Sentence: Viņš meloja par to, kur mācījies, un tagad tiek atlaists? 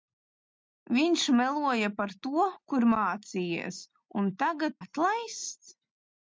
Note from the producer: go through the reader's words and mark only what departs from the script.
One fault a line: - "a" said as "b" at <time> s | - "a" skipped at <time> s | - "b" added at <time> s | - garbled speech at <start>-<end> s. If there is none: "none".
- "tiek" skipped at 4.8 s